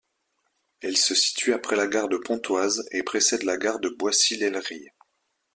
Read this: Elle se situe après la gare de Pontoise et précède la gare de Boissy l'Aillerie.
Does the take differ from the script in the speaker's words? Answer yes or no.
no